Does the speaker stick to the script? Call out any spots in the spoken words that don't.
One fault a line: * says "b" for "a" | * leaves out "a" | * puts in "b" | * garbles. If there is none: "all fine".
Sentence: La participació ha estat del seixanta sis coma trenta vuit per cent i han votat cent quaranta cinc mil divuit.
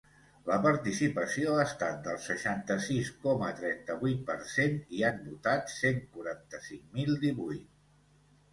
all fine